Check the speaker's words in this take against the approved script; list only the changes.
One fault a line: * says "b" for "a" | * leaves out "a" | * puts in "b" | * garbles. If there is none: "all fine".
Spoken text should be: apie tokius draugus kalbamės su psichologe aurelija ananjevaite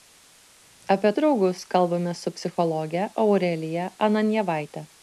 * leaves out "tokius"